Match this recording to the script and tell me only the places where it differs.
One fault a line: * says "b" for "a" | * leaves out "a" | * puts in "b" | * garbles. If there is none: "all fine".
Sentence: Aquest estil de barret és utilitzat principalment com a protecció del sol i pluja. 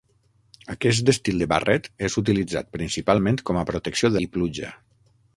* leaves out "del sol"